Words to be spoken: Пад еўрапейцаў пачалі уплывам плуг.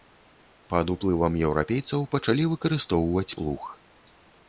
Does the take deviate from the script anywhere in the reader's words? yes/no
yes